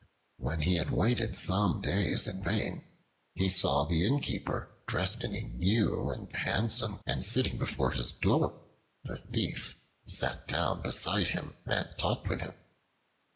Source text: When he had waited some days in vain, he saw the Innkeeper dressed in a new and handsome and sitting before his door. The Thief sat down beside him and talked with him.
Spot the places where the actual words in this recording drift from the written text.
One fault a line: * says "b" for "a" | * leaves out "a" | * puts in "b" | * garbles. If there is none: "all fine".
all fine